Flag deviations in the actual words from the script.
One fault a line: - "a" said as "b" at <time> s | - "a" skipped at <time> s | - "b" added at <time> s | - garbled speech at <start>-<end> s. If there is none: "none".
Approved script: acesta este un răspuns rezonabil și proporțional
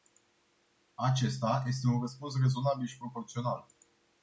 none